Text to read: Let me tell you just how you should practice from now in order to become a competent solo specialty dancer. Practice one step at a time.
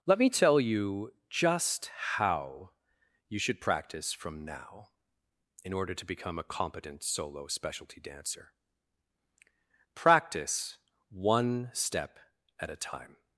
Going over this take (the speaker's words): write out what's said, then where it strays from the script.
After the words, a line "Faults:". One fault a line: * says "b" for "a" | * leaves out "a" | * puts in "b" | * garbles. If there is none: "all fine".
Let me tell you just how you should practice from now in order to become a competent solo specialty dancer. Practice one step at a time.
Faults:
all fine